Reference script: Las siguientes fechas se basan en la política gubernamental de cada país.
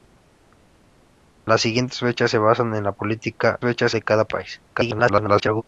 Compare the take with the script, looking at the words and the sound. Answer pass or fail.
fail